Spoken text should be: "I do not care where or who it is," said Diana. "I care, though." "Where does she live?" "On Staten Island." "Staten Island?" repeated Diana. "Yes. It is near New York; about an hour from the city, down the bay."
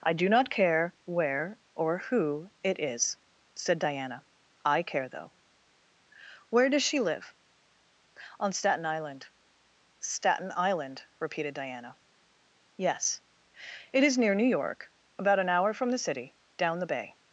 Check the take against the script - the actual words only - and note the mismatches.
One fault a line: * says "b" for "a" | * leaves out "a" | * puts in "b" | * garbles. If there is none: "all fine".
all fine